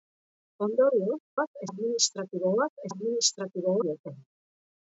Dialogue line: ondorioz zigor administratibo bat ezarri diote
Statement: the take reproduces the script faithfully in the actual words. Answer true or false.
false